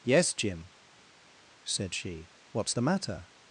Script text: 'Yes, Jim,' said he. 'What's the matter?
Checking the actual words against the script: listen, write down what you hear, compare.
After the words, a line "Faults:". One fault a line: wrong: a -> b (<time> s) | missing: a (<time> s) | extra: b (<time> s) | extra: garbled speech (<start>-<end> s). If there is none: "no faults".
'Yes, Jim,' said she. 'What's the matter?
Faults:
wrong: he -> she (1.9 s)